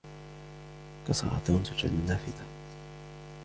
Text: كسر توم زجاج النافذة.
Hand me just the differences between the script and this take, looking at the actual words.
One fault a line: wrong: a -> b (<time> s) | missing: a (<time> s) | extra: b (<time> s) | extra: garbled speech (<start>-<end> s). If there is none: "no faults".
no faults